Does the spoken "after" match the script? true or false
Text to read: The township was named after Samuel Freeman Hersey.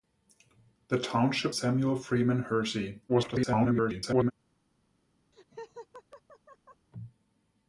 false